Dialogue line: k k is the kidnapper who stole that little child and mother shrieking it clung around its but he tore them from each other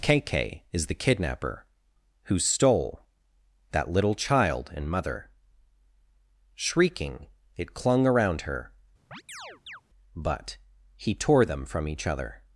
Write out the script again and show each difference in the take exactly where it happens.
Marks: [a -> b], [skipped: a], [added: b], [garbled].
k k is the kidnapper who stole that little child and mother shrieking it clung around [its -> her] but he tore them from each other